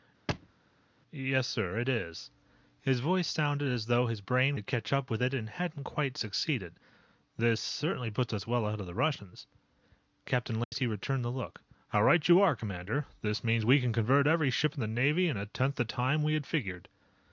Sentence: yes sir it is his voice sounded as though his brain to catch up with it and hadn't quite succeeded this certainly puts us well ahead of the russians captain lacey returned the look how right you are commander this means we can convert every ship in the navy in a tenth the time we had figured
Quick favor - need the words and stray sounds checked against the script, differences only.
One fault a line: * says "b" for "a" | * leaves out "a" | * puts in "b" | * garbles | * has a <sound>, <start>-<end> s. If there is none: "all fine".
* has a thud, 0.3-0.5 s
* has a dropout, 10.6-10.7 s